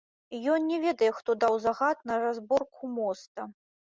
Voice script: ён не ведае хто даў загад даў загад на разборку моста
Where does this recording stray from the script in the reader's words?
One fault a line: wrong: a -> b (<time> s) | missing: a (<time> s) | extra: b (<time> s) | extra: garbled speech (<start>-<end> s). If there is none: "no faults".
missing: даў загад (2.0 s)